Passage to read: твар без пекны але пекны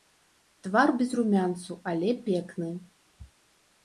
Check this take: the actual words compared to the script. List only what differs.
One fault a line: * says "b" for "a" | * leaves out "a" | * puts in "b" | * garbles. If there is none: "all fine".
* says "румянцу" for "пекны"